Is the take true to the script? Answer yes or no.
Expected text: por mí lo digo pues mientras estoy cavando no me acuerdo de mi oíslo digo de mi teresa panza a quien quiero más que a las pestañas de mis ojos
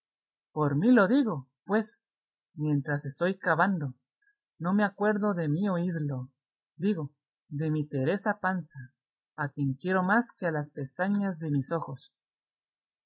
yes